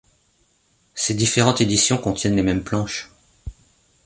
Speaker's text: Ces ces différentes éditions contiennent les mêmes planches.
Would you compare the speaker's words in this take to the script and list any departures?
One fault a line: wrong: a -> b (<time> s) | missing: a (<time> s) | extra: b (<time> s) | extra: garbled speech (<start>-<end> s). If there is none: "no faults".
missing: ces (1.1 s)